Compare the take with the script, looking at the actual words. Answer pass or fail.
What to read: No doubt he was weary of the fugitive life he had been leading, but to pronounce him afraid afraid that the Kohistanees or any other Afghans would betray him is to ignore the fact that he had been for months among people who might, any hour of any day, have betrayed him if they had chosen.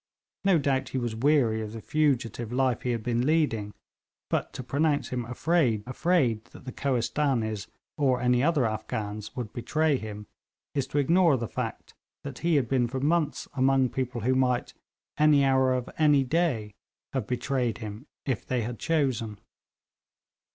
pass